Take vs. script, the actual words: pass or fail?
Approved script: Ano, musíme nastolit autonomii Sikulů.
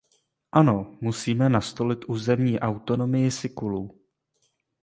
fail